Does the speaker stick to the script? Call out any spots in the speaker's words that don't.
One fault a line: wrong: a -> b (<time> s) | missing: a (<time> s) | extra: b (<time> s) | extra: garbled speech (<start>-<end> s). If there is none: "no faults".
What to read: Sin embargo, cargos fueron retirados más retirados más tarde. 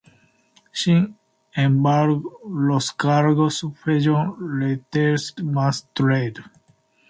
extra: los (2.5 s)
missing: retirados más (5.9 s)